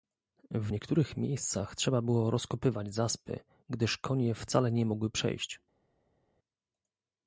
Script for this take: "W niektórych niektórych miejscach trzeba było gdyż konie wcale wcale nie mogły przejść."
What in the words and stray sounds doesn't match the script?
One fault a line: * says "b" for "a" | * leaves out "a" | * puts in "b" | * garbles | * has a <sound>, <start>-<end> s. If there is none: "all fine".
* leaves out "niektórych"
* puts in "rozkopywać zaspy"
* leaves out "wcale"